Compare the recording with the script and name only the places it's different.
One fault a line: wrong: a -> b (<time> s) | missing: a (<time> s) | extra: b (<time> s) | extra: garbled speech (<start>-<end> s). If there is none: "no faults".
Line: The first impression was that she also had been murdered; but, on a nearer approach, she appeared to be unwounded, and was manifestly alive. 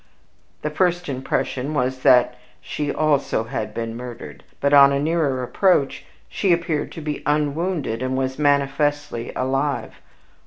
no faults